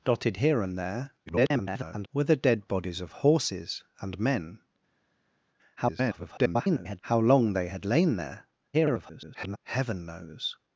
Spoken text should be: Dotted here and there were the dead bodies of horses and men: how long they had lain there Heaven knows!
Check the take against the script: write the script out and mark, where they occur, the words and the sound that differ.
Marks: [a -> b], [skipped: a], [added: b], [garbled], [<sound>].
Dotted here and there [garbled] were the dead bodies of horses and men: [garbled] how long they had lain there [garbled] Heaven knows!